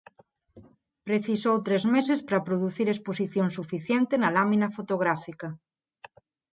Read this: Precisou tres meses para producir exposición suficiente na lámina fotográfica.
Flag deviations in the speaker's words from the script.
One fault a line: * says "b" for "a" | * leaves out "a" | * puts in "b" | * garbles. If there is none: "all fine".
all fine